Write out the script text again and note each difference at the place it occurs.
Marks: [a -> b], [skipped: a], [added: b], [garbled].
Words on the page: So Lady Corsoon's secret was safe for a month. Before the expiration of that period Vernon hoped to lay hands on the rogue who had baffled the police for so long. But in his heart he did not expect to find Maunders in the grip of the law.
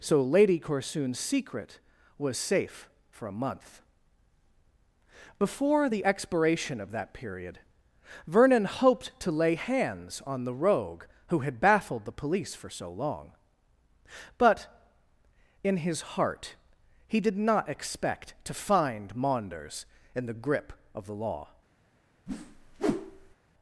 So Lady Corsoon's secret was safe for a month. Before the expiration of that period Vernon hoped to lay hands on the rogue who had baffled the police for so long. But in his heart he did not expect to find Maunders in the grip of the law.